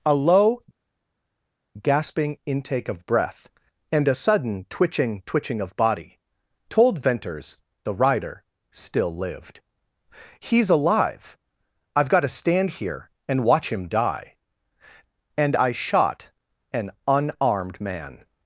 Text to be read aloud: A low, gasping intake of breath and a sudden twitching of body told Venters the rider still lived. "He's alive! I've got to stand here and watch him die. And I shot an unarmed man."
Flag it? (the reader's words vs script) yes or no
yes